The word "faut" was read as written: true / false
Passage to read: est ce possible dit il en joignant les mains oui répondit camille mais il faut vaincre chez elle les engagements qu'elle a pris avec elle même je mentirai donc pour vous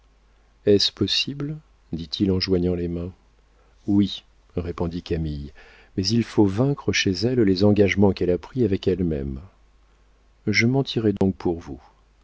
true